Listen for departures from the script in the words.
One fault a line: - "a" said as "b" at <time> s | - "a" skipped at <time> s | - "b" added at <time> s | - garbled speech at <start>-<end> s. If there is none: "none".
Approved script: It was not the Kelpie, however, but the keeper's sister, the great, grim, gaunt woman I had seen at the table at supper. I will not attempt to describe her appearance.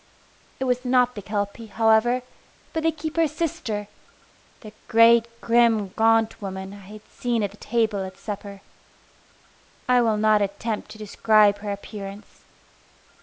none